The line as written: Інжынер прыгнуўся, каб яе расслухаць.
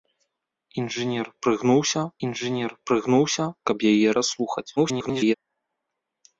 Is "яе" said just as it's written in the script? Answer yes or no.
yes